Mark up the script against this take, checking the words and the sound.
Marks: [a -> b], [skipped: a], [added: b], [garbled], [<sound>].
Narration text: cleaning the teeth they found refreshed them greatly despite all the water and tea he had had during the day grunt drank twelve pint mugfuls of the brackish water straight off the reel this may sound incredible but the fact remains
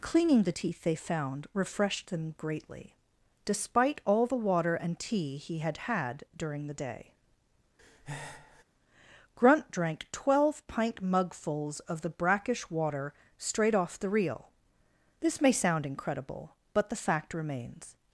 cleaning the teeth they found refreshed them greatly despite all the water and tea he had had during the day [breath] grunt drank twelve pint mugfuls of the brackish water straight off the reel this may sound incredible but the fact remains